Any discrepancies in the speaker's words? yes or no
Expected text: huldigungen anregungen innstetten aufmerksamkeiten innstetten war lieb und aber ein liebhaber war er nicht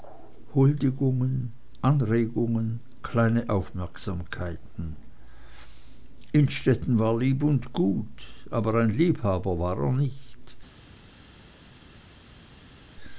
yes